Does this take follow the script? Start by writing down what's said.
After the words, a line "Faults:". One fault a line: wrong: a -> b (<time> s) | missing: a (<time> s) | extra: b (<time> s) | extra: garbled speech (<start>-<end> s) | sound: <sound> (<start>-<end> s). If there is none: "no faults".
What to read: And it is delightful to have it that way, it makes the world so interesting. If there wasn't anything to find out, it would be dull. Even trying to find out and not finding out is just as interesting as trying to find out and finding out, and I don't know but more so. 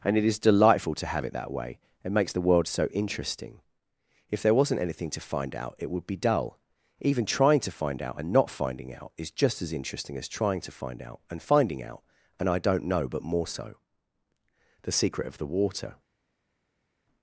And it is delightful to have it that way, it makes the world so interesting. If there wasn't anything to find out, it would be dull. Even trying to find out and not finding out is just as interesting as trying to find out and finding out, and I don't know but more so. The secret of the water
Faults:
extra: The secret of the water (14.8 s)